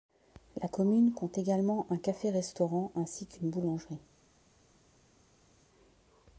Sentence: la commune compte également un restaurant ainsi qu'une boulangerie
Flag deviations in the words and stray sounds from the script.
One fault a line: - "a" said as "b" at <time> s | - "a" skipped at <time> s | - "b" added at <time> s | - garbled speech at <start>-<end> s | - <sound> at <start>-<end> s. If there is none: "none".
- "café" added at 2.0 s